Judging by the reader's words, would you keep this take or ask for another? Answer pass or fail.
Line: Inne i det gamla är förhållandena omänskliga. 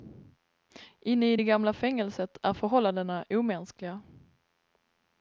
fail